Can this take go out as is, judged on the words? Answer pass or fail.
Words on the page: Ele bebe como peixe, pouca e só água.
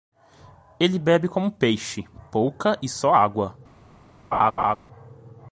pass